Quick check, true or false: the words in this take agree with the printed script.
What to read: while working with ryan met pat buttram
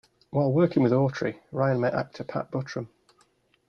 false